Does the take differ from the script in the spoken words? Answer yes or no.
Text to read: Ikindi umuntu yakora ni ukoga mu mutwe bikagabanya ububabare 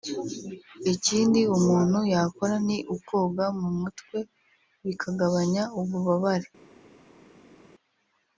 no